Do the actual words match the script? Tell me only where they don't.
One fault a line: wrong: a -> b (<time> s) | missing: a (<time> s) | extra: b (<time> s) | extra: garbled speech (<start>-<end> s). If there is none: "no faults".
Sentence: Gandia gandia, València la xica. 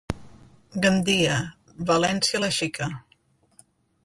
missing: gandia (1.4 s)